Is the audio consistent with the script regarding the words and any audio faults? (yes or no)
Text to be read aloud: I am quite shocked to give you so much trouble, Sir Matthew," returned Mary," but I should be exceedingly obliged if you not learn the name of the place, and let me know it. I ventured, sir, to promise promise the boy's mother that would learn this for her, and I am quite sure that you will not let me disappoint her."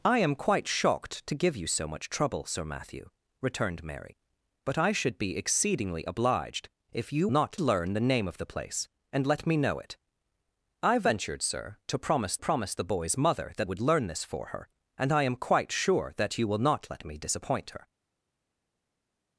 yes